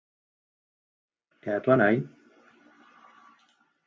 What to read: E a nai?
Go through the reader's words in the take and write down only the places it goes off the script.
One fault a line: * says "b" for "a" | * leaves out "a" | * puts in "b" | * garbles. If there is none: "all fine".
* puts in "túa"